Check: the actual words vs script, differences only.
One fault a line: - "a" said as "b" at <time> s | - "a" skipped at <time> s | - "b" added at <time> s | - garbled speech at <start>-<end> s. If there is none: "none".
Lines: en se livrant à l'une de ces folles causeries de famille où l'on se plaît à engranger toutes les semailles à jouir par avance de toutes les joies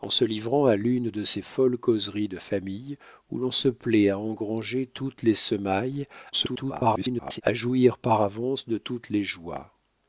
- garbled speech at 6.3-7.4 s